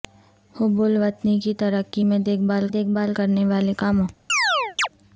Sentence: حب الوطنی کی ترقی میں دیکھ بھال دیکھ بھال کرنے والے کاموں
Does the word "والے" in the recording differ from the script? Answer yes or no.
no